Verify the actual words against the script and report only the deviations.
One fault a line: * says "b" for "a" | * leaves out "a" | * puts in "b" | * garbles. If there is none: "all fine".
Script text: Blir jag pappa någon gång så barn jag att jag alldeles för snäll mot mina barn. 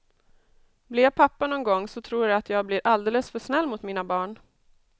* says "tror" for "barn"
* puts in "blir"